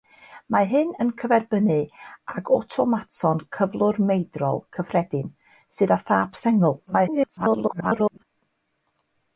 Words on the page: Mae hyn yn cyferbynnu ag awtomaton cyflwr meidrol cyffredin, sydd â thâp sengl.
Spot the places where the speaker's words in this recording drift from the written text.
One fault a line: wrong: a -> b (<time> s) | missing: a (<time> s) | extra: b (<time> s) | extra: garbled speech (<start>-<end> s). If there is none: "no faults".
extra: garbled speech (6.9-8.2 s)